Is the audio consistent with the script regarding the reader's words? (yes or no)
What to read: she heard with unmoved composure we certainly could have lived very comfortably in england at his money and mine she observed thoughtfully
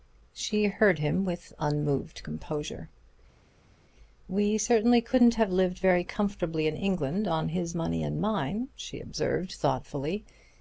no